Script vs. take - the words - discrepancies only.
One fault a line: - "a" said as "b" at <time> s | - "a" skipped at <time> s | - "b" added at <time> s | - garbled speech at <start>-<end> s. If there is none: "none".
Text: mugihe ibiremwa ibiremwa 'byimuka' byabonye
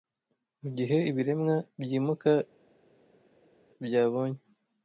- "ibiremwa" skipped at 1.6 s